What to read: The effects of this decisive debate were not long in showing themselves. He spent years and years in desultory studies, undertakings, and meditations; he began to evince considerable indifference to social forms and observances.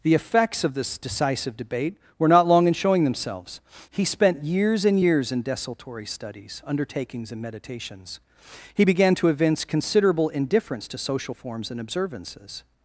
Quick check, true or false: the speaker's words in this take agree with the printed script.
true